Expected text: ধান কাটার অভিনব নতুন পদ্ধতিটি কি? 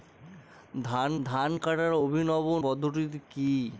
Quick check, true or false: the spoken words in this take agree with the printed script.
false